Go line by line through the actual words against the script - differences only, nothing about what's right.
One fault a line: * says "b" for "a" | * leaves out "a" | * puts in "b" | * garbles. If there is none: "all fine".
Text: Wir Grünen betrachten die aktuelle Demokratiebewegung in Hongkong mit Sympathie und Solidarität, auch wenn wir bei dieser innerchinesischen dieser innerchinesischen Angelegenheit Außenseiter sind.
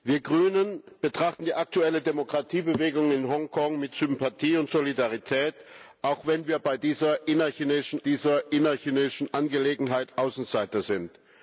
all fine